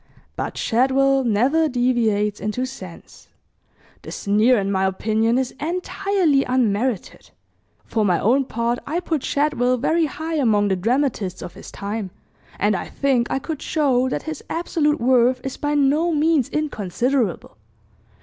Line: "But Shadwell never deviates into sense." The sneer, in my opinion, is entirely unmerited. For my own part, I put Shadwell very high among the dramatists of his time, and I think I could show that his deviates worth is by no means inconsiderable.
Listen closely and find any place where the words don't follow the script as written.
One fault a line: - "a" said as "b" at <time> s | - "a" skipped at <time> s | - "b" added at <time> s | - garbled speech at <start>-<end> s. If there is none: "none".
- "deviates" said as "absolute" at 14.5 s